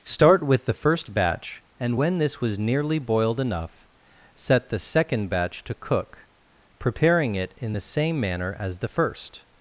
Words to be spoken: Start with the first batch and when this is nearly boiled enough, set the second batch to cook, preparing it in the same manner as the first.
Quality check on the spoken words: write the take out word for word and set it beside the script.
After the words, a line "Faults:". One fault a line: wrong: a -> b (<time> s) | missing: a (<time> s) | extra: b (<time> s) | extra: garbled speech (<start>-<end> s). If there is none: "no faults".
Start with the first batch and when this was nearly boiled enough, set the second batch to cook, preparing it in the same manner as the first.
Faults:
wrong: is -> was (2.4 s)